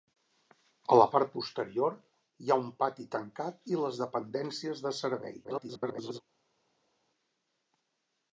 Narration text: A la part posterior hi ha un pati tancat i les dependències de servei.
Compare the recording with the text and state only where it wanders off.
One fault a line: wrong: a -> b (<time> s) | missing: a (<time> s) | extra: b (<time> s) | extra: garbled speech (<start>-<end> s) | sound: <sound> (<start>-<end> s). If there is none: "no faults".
extra: garbled speech (5.4-6.2 s)